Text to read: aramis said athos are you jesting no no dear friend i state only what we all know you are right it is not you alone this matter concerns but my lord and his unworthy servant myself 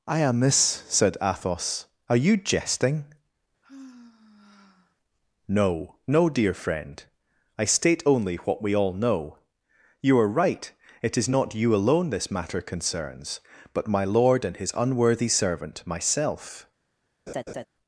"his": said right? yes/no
yes